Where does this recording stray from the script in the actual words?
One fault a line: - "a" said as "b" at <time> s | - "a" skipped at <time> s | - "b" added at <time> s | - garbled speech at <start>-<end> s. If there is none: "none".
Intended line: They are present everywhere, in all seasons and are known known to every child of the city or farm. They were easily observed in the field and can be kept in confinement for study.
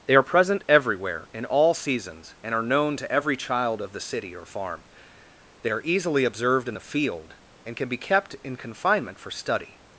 - "known" skipped at 3.0 s
- "were" said as "are" at 5.7 s